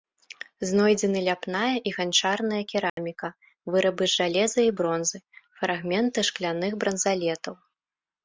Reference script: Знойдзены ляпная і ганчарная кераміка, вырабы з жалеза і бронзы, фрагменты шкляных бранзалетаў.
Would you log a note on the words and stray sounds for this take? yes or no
yes